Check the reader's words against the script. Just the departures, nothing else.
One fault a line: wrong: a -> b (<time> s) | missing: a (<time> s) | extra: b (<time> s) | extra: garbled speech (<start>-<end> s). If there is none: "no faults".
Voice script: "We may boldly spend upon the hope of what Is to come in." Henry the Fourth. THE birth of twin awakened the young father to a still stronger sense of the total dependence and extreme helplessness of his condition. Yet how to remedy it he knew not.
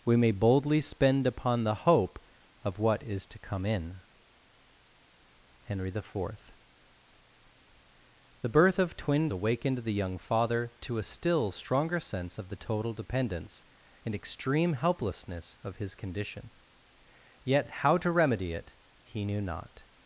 no faults